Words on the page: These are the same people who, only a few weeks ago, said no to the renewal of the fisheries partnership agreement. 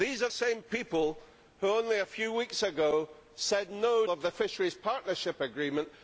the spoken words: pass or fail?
fail